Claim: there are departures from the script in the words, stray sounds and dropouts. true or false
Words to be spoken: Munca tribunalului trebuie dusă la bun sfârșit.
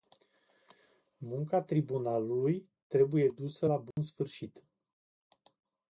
true